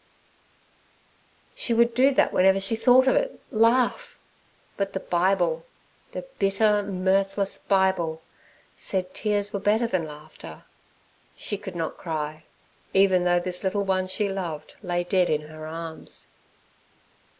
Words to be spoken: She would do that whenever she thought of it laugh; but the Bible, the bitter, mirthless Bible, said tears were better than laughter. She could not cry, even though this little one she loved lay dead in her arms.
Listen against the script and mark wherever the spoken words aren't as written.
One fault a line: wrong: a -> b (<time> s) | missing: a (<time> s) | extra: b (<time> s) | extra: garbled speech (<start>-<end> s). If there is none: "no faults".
no faults